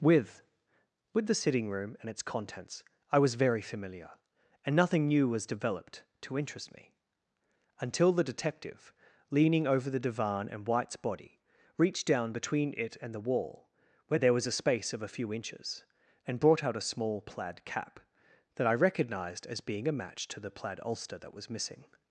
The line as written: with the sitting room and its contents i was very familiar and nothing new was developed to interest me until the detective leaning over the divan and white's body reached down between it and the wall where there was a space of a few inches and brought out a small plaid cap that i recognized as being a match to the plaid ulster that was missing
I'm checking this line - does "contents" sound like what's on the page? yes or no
yes